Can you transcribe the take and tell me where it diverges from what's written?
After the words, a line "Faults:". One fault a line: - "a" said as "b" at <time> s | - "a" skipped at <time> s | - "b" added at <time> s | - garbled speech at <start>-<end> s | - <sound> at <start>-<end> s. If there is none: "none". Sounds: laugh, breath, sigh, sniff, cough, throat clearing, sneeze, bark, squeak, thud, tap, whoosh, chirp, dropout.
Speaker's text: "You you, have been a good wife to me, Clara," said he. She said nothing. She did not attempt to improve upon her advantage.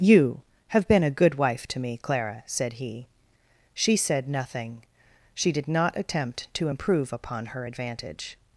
"You, have been a good wife to me, Clara," said he. She said nothing. She did not attempt to improve upon her advantage.
Faults:
- "you" skipped at 0.4 s